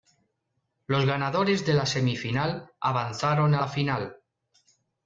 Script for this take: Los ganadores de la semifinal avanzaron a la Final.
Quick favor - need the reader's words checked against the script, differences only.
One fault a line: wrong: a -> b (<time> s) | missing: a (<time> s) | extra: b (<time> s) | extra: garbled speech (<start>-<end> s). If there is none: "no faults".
no faults